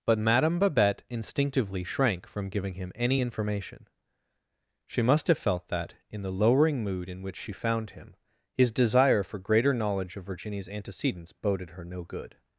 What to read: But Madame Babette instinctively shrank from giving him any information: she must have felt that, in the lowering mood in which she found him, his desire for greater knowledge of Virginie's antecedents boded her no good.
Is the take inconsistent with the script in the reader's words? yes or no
no